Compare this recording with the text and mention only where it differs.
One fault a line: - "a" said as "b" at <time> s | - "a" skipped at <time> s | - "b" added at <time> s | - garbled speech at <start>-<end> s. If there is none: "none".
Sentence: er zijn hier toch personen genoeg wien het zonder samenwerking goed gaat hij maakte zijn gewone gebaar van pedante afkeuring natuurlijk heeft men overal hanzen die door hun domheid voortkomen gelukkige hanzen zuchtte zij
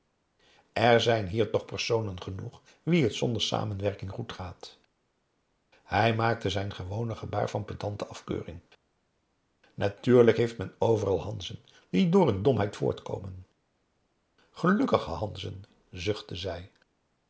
none